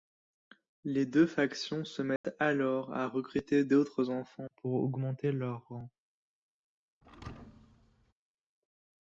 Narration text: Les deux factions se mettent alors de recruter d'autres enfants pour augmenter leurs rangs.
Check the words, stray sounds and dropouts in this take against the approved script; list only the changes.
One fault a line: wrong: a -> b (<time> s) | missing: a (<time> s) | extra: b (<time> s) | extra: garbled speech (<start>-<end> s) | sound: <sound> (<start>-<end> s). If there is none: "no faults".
sound: dropout (2.2-2.2 s)
wrong: de -> à (2.9 s)
sound: thud (7.0-8.1 s)